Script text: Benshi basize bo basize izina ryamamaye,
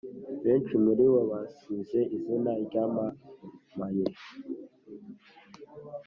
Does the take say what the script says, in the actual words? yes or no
no